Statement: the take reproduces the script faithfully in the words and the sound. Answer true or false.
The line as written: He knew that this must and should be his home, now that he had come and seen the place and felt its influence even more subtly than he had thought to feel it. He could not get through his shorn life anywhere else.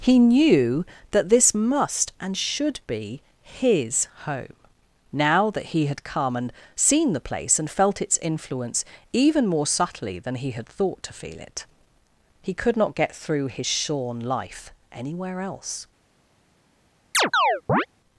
false